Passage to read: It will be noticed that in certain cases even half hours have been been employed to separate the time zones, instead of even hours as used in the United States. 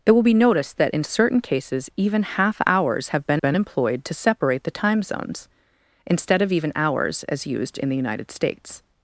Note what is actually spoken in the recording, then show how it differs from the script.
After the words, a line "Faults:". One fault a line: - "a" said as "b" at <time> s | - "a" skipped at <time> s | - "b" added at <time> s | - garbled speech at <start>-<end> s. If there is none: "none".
It will be noticed that in certain cases even half hours have been been employed to separate the time zones, instead of even hours as used in the United States.
Faults:
none